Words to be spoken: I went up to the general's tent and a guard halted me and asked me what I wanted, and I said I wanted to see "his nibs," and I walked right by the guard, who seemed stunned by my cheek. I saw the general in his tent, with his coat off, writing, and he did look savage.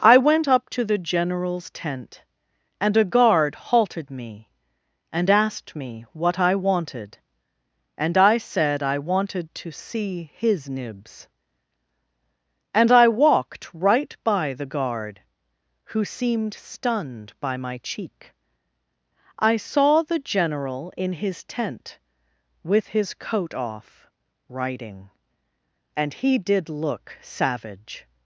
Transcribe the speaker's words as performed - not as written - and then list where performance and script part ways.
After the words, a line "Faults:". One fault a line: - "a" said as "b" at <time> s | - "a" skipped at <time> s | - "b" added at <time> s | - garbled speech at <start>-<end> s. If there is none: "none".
I went up to the general's tent and a guard halted me and asked me what I wanted, and I said I wanted to see "his nibs," and I walked right by the guard, who seemed stunned by my cheek. I saw the general in his tent, with his coat off, writing, and he did look savage.
Faults:
none